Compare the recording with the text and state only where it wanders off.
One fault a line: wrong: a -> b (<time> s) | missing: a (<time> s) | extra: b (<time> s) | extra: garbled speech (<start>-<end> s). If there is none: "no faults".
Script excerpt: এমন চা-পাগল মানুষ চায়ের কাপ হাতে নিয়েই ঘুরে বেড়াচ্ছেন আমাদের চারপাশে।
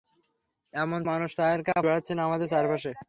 missing: চা-পাগল (1.0 s)
missing: হাতে নিয়েই ঘুরে (1.8 s)